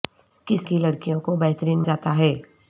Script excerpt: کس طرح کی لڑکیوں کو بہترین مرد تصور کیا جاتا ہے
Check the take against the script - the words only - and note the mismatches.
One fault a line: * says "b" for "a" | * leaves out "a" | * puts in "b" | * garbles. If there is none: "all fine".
* leaves out "طرح"
* leaves out "مرد تصور کیا"